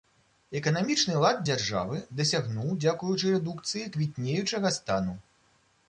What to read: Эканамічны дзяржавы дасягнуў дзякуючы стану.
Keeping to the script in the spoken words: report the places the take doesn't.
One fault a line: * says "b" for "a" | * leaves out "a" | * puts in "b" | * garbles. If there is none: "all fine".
* puts in "лад"
* puts in "рэдукцыі квітнеючага"